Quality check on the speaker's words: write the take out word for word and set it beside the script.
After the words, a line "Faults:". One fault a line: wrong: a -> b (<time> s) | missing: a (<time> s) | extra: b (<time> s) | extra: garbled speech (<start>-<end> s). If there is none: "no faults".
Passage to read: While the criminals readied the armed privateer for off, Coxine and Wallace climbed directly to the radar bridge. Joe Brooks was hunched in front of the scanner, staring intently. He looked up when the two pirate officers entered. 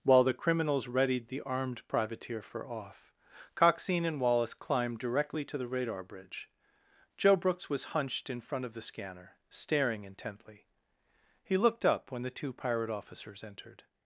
While the criminals readied the armed privateer for off, Coxine and Wallace climbed directly to the radar bridge. Joe Brooks was hunched in front of the scanner, staring intently. He looked up when the two pirate officers entered.
Faults:
no faults